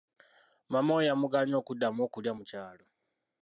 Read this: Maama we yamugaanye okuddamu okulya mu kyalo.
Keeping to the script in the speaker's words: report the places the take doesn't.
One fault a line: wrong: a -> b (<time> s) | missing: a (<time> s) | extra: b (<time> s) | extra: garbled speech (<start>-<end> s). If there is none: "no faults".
no faults